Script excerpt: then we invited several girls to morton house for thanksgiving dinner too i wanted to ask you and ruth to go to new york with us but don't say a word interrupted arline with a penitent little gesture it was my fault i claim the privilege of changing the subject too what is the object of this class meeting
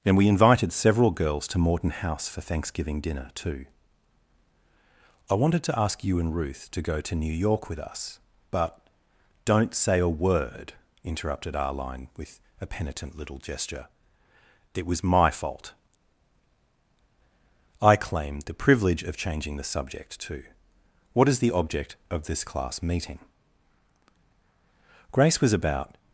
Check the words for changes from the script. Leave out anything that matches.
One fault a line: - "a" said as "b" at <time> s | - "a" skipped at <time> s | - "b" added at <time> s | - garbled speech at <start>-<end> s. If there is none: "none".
- "grace was about" added at 25.1 s